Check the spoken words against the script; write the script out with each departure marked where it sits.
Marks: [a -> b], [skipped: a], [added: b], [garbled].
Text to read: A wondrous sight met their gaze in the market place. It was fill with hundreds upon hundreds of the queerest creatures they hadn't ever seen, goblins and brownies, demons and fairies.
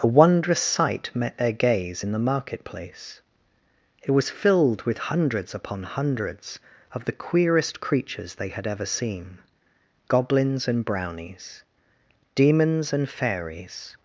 A wondrous sight met their gaze in the market place. It was [fill -> filled] with hundreds upon hundreds of the queerest creatures they [hadn't -> had] ever seen, goblins and brownies, demons and fairies.